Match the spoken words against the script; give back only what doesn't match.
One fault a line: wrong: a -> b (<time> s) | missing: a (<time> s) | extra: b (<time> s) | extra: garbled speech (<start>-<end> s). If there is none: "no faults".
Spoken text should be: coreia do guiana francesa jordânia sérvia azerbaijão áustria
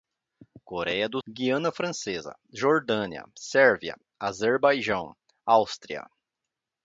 no faults